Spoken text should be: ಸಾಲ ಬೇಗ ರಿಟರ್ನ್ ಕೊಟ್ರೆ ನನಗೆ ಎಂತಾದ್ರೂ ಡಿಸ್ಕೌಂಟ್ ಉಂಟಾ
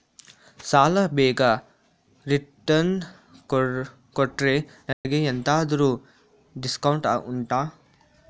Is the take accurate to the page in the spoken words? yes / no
yes